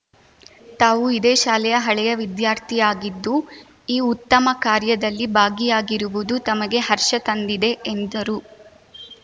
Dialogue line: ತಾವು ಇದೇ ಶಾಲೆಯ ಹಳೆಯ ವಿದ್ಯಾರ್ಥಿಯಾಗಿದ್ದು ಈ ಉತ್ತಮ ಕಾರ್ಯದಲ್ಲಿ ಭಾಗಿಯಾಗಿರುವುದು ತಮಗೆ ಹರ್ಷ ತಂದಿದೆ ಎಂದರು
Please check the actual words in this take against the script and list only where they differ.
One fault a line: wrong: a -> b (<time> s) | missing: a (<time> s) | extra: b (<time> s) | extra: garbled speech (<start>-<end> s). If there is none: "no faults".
no faults